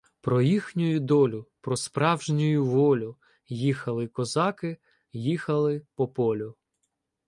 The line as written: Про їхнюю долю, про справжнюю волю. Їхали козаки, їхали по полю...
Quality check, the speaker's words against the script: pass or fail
pass